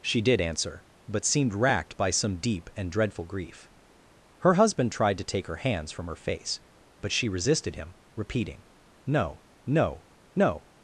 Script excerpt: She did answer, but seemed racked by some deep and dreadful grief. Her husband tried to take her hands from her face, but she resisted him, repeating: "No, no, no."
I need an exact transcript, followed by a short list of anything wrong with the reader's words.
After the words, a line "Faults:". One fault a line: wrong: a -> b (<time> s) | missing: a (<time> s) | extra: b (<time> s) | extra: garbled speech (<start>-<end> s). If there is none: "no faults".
She did answer, but seemed racked by some deep and dreadful grief. Her husband tried to take her hands from her face, but she resisted him, repeating: "No, no, no."
Faults:
no faults